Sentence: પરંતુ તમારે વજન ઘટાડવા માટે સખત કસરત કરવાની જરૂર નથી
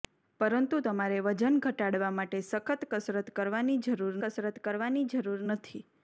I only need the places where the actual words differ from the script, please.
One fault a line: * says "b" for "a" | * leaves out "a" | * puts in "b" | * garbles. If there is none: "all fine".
* puts in "કસરત કરવાની જરૂર"